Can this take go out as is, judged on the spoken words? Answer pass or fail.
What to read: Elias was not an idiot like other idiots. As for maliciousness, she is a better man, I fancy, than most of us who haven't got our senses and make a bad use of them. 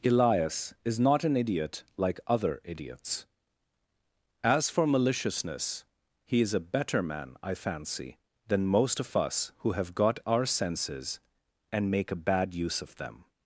fail